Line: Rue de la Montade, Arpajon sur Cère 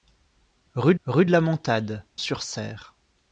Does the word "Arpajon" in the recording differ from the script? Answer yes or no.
yes